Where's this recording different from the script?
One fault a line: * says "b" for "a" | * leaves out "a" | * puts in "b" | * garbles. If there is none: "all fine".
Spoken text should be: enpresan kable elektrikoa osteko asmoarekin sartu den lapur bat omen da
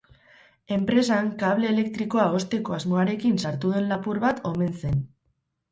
* says "zen" for "da"